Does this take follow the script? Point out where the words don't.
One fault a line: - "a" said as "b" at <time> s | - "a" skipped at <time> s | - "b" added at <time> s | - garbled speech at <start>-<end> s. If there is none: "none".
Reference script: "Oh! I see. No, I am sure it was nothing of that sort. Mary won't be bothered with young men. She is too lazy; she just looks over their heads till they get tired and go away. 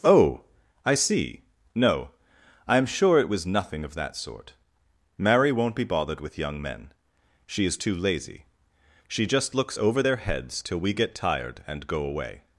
- "they" said as "we" at 10.8 s